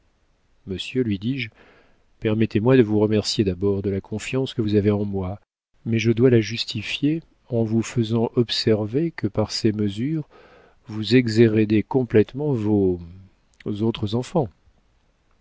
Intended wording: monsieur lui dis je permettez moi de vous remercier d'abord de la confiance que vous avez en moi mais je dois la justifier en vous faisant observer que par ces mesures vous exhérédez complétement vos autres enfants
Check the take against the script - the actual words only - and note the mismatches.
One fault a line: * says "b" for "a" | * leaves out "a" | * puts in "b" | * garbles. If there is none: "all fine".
all fine